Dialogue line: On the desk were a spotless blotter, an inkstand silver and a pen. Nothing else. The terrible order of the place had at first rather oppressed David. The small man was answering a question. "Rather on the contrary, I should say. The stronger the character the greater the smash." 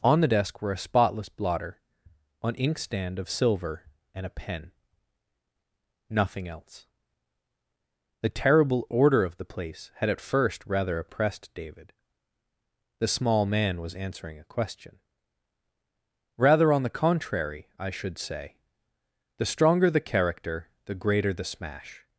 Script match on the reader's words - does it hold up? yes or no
no